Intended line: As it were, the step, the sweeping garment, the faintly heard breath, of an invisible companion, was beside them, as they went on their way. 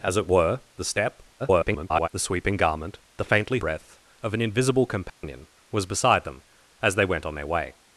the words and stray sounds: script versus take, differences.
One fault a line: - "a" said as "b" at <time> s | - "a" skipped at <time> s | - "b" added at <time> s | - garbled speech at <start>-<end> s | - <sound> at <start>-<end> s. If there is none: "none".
- garbled speech at 1.4-2.1 s
- "heard" skipped at 3.6 s
- dropout at 5.1-5.2 s